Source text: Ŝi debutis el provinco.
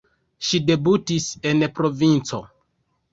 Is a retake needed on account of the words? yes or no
yes